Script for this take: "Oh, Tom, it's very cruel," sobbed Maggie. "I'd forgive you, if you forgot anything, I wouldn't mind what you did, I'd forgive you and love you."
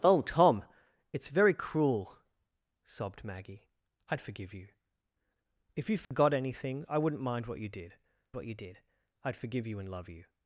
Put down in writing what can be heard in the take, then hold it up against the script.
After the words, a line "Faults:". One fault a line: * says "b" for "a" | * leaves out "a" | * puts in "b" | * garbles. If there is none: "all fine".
"Oh, Tom, it's very cruel," sobbed Maggie. "I'd forgive you, if you forgot anything, I wouldn't mind what you did what you did, I'd forgive you and love you."
Faults:
* puts in "what you did"